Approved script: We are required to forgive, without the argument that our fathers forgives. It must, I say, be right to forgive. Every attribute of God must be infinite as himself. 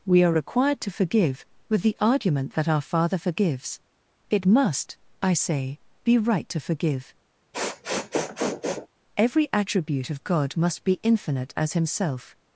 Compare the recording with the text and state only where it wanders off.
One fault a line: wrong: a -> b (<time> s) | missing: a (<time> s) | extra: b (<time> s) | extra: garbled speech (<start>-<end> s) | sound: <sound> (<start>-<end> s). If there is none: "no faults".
wrong: without -> with (1.7 s)
wrong: fathers -> father (2.8 s)
sound: sniff (7.5-8.9 s)